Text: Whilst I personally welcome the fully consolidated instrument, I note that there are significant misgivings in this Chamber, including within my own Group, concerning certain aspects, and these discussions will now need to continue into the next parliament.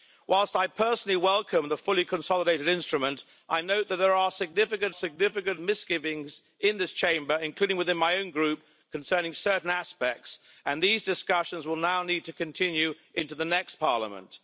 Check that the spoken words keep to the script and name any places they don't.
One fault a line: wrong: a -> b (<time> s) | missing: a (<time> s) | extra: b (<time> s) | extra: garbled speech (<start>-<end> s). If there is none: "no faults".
extra: significant (4.9 s)